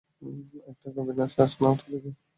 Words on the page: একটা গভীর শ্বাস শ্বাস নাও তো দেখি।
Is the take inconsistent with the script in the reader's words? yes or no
yes